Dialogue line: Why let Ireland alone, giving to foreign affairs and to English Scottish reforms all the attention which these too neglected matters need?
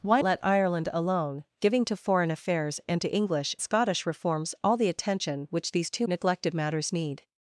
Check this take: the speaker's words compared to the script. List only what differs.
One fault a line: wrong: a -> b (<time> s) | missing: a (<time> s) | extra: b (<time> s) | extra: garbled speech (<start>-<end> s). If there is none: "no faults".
no faults